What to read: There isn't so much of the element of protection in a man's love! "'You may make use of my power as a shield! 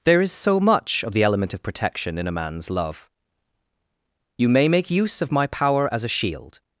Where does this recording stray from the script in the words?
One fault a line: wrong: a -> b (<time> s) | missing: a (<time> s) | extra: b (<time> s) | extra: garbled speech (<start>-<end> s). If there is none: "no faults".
wrong: isn't -> is (0.2 s)